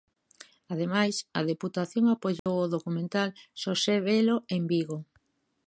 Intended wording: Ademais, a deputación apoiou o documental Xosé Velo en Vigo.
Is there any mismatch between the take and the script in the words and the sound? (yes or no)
yes